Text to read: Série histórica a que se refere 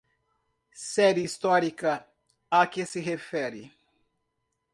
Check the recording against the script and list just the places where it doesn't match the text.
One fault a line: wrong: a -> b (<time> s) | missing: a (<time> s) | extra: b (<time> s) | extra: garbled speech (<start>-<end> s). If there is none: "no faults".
no faults